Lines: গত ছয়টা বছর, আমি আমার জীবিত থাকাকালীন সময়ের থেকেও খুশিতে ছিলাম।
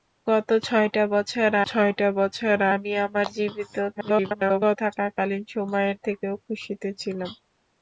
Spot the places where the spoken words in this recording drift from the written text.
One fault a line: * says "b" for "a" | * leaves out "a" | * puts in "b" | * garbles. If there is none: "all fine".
* puts in "ছয়টা বছর"
* garbles